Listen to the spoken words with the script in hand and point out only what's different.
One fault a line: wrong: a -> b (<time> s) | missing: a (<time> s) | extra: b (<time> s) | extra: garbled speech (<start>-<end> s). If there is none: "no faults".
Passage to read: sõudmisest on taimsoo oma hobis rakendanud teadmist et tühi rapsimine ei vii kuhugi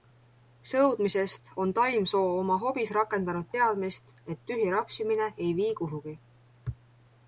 no faults